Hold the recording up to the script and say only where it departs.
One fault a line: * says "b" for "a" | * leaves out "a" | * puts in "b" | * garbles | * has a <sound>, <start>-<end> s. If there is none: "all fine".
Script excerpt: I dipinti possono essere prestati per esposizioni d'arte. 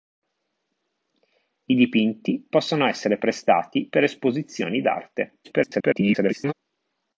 * garbles